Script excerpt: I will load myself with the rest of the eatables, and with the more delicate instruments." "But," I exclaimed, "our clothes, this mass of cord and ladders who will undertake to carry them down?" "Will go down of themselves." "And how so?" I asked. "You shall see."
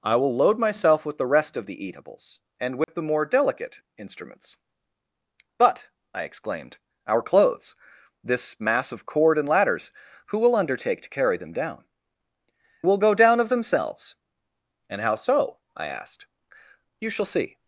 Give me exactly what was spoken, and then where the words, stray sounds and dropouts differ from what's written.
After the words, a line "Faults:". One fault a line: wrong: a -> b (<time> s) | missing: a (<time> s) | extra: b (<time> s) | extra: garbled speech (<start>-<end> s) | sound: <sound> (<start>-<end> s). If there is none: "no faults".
I will load myself with the rest of the eatables, and with the more delicate instruments." "But," I exclaimed, "our clothes, this mass of cord and ladders who will undertake to carry them down?" "Will go down of themselves." "And how so?" I asked. "You shall see."
Faults:
sound: dropout (2.8-2.9 s)